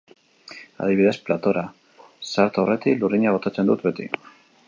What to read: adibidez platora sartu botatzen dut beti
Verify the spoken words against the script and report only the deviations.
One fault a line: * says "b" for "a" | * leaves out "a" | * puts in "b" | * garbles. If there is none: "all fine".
* puts in "aurretik lurrina"